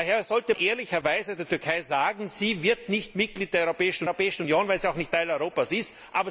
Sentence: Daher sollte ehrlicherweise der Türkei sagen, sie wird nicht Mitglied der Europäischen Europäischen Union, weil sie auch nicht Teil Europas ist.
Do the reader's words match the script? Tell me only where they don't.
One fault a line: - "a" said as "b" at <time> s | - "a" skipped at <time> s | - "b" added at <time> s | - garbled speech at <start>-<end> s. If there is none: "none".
none